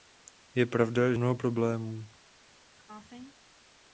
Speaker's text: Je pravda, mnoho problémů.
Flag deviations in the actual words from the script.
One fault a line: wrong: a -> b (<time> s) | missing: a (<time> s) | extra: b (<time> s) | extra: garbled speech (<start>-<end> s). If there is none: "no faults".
no faults